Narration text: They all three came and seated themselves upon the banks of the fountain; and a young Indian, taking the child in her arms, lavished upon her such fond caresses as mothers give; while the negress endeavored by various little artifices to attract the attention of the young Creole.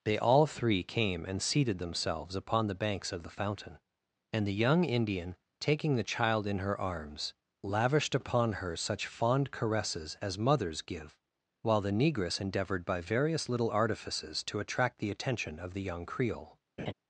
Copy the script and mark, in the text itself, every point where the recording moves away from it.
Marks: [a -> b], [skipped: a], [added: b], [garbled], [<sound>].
They all three came and seated themselves upon the banks of the fountain; and [a -> the] young Indian, taking the child in her arms, lavished upon her such fond caresses as mothers give; while the negress endeavored by various little artifices to attract the attention of the young Creole. [laugh]